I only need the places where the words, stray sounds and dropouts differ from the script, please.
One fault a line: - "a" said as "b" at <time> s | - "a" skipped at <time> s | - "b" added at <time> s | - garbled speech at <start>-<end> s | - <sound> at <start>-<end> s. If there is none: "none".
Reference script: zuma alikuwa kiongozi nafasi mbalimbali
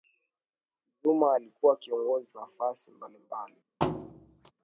- thud at 3.8-4.5 s